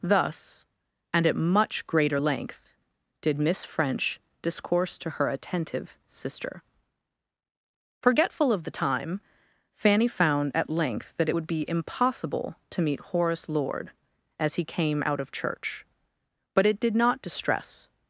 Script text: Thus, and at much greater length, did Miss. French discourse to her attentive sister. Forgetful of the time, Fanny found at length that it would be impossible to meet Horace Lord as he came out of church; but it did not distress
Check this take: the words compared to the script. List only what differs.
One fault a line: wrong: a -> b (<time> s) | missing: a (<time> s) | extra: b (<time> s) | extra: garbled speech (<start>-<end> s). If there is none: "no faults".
no faults